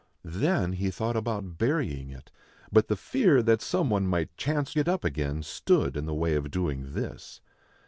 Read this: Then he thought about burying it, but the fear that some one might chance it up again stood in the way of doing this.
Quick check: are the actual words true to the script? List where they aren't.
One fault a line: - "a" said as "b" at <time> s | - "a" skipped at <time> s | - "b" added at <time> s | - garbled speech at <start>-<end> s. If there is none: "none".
none